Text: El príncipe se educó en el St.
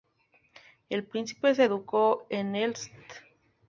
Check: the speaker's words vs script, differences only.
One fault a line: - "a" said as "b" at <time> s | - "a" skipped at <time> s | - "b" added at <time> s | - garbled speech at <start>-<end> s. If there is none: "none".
none